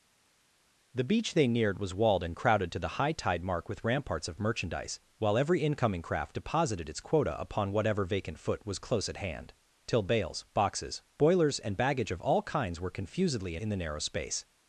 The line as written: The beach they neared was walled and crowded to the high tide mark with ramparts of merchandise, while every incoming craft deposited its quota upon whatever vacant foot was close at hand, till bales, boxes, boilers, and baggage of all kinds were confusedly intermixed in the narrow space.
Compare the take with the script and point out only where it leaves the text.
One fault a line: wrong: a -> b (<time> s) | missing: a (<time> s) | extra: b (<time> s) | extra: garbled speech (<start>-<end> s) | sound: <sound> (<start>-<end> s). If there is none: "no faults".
missing: intermixed (13.6 s)